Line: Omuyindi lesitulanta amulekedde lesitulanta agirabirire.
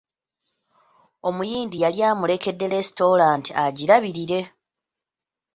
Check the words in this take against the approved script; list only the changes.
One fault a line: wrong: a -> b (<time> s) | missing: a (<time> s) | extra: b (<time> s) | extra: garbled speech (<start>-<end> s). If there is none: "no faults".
wrong: lesitulanta -> yali (1.8 s)